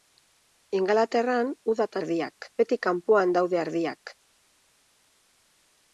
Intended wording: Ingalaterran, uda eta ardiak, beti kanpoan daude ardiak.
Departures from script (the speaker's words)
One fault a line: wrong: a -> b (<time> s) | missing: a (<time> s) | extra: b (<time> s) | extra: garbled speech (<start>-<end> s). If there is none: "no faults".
no faults